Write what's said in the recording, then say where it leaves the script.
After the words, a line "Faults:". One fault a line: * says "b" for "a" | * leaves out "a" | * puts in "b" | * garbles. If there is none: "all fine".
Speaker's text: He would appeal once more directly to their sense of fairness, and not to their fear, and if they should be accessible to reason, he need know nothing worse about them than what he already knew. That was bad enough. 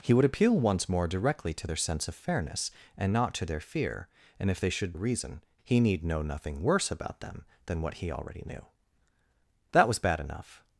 He would appeal once more directly to their sense of fairness, and not to their fear, and if they should reason, he need know nothing worse about them than what he already knew. That was bad enough.
Faults:
* leaves out "be accessible to"